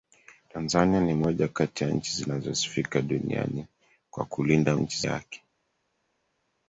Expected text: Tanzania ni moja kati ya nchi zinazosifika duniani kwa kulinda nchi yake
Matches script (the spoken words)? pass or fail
pass